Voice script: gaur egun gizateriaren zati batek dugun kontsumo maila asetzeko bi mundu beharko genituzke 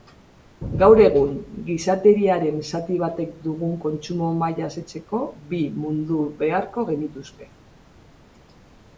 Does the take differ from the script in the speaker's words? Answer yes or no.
no